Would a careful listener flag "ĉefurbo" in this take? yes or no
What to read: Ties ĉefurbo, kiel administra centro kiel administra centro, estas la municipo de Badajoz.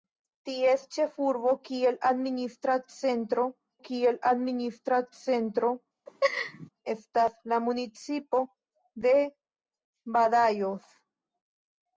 no